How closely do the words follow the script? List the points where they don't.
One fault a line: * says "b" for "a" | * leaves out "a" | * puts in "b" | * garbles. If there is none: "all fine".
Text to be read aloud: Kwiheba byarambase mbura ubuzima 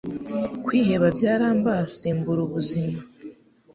all fine